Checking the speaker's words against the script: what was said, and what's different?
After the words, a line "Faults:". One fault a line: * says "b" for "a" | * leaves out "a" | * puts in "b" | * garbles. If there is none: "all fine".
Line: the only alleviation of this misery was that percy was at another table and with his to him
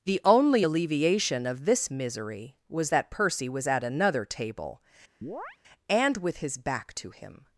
the only alleviation of this misery was that percy was at another table and with his back to him
Faults:
* puts in "back"